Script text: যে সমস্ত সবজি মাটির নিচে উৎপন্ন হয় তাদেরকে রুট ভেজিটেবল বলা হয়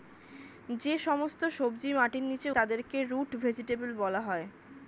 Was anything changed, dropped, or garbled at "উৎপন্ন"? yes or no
yes